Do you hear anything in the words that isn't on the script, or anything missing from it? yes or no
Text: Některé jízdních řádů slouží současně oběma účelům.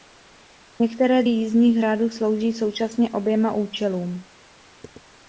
no